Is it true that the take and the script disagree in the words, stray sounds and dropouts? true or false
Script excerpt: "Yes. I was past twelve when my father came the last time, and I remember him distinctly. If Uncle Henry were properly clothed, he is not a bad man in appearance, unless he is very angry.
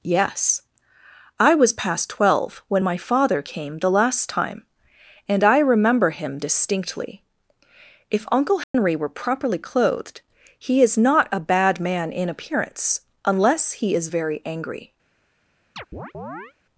true